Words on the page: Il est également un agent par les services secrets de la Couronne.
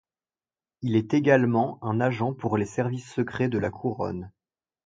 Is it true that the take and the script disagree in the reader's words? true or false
true